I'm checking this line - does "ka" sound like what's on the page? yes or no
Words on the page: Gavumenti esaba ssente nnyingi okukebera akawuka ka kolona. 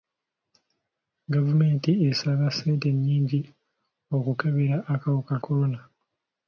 no